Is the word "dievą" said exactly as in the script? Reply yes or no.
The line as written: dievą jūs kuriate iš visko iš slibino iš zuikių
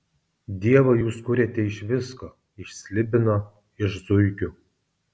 yes